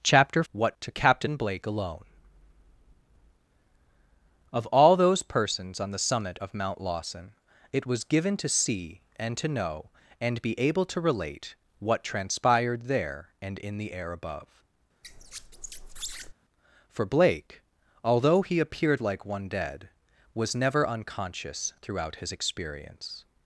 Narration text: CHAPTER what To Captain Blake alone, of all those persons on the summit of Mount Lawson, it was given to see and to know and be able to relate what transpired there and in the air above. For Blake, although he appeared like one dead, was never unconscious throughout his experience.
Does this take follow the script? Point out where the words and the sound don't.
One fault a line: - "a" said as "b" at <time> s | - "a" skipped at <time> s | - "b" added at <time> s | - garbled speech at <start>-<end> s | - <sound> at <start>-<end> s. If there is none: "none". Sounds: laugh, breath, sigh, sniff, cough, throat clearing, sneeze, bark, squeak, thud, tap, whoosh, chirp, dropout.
- squeak at 15.0-16.3 s